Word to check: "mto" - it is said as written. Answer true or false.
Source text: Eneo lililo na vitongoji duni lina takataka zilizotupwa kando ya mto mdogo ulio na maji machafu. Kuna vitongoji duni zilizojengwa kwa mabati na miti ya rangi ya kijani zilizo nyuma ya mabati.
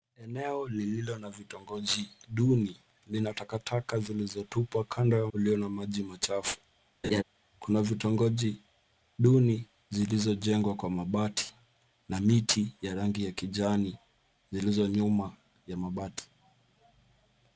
false